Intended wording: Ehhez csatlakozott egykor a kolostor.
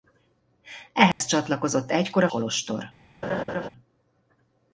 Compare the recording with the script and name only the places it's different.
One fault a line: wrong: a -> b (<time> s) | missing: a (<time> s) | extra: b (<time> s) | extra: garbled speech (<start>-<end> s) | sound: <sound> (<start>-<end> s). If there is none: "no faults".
sound: dropout (1.1-1.2 s)
sound: laugh (3.2-3.7 s)